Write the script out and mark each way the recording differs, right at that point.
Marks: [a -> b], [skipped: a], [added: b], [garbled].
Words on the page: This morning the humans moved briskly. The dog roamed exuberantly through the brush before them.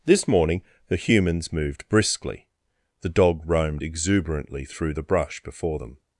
This morning the humans moved briskly. The dog roamed exuberantly through the brush before them.